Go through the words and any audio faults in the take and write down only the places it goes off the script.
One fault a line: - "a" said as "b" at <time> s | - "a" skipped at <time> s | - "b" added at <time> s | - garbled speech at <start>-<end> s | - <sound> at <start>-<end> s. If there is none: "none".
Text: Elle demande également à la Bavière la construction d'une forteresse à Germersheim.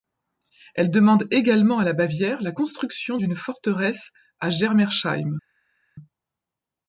none